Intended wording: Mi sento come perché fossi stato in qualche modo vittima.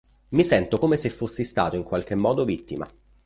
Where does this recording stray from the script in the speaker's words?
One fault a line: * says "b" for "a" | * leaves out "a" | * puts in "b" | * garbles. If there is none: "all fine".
* says "se" for "perché"